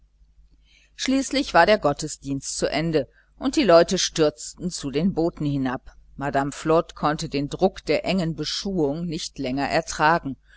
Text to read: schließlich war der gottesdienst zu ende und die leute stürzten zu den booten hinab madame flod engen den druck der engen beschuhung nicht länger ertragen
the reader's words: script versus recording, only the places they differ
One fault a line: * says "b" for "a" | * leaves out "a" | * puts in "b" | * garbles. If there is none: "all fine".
* says "konnte" for "engen"